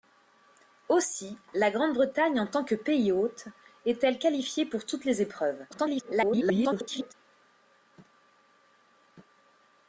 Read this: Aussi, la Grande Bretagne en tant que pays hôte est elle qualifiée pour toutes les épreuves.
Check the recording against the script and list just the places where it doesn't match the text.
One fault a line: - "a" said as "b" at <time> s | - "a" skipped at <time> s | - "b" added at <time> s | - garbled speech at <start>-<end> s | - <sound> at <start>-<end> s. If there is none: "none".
- garbled speech at 5.7-7.1 s